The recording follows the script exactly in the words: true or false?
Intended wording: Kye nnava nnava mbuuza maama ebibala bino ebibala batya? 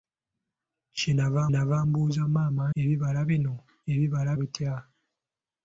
true